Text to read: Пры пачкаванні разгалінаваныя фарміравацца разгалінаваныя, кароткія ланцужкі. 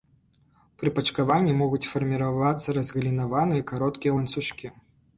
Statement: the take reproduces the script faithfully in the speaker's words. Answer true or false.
false